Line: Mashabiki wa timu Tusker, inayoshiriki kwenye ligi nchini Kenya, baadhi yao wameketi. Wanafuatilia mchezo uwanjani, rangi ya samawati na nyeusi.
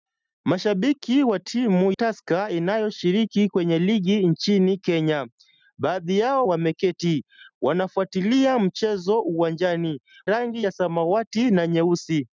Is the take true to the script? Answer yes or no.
yes